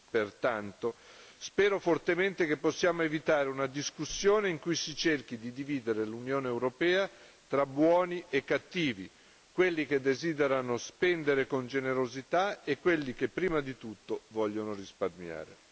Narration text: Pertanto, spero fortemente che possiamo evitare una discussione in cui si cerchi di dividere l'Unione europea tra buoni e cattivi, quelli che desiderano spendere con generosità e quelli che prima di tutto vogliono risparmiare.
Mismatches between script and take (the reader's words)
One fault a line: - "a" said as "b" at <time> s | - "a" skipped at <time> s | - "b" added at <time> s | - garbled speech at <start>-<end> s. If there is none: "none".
none